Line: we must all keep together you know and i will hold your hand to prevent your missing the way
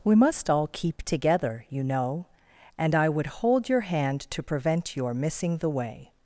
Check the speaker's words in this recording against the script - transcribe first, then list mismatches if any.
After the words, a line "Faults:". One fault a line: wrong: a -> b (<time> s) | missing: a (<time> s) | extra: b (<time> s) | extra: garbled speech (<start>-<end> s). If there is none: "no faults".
we must all keep together you know and i would hold your hand to prevent your missing the way
Faults:
wrong: will -> would (3.1 s)